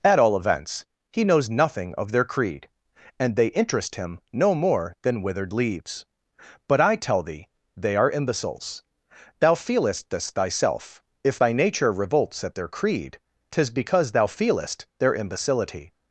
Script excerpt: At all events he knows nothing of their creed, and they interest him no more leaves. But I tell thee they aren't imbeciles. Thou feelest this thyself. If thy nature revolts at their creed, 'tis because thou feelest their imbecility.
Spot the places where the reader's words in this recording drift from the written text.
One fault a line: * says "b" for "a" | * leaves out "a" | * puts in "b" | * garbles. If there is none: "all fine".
* puts in "than withered"
* says "are" for "aren't"